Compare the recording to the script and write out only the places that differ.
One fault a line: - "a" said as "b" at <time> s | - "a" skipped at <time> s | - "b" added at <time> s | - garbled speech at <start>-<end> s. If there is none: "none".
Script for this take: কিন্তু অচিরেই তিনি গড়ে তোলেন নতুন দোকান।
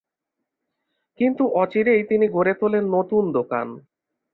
none